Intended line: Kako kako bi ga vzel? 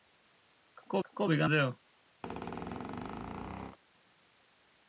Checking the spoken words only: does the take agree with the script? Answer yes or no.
yes